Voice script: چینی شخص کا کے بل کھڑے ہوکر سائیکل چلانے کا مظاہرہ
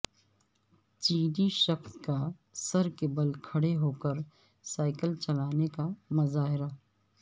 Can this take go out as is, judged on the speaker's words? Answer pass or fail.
fail